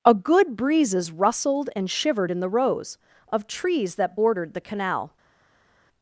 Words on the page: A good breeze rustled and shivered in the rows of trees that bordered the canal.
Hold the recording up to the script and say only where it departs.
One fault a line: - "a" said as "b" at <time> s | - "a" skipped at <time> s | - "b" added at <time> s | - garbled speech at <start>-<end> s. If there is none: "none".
- "breeze" said as "breezes" at 0.6 s